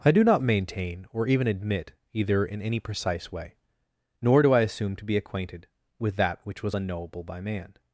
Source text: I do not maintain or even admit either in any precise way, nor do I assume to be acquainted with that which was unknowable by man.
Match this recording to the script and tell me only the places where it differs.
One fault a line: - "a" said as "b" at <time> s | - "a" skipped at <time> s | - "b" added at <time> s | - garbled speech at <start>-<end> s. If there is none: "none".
none